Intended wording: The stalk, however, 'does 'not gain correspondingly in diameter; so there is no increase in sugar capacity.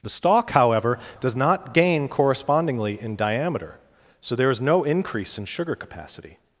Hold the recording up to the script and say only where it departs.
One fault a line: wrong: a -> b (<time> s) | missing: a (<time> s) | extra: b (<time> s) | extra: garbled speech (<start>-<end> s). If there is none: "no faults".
no faults